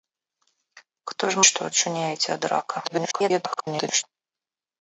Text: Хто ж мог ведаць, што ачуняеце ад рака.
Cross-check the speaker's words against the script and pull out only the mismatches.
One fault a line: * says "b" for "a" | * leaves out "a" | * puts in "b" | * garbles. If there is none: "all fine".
* leaves out "мог ведаць"
* garbles